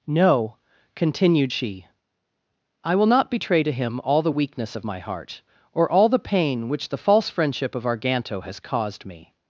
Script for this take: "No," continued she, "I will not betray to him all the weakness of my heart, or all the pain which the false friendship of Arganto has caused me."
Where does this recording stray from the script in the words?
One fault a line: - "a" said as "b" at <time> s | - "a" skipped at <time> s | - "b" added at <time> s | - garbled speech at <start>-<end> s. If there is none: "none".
none